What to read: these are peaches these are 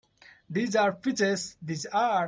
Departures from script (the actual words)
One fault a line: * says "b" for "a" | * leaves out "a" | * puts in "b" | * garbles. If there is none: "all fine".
all fine